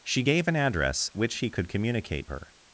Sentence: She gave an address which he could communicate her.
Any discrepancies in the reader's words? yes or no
no